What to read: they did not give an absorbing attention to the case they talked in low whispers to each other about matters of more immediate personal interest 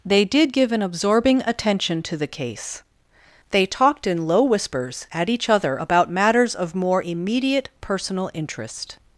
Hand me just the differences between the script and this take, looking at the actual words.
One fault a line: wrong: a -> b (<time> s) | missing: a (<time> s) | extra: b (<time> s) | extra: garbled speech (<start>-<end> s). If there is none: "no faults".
missing: not (0.5 s)
wrong: to -> at (5.1 s)